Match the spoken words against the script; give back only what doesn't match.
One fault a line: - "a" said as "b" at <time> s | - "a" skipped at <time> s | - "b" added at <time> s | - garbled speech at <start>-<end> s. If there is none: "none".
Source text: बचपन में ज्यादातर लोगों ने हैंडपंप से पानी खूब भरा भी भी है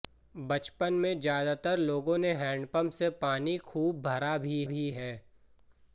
none